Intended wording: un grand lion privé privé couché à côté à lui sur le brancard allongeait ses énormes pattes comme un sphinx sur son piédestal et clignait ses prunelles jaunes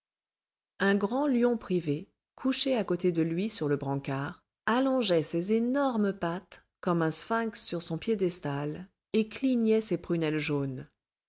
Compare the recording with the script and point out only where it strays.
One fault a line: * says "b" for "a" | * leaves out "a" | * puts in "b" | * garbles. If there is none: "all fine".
* leaves out "privé"
* says "de" for "à"